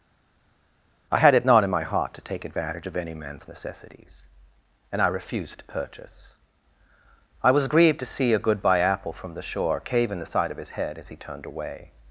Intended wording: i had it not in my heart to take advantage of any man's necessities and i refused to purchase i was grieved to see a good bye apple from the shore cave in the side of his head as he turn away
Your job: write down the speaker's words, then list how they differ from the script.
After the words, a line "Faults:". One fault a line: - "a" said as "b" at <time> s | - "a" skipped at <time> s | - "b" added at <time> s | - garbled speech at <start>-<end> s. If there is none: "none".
i had it not in my heart to take advantage of any man's necessities and i refused to purchase i was grieved to see a good bye apple from the shore cave in the side of his head as he turned away
Faults:
- "turn" said as "turned" at 11.2 s